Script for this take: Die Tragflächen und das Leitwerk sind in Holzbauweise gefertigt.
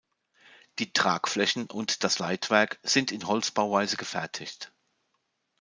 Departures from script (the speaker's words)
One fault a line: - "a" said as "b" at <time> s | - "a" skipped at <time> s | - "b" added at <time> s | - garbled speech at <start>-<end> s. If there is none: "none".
none